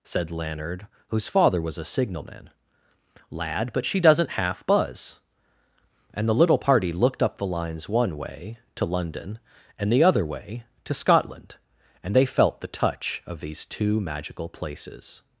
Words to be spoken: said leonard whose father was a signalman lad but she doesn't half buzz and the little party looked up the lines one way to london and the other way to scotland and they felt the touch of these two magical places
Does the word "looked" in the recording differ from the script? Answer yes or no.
no